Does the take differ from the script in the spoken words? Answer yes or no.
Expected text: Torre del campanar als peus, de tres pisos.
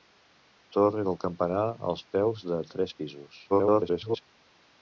yes